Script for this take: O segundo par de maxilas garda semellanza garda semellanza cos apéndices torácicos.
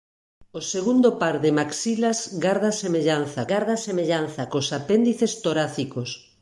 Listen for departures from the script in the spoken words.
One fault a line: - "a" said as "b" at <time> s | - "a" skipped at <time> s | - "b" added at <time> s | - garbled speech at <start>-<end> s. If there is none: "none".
none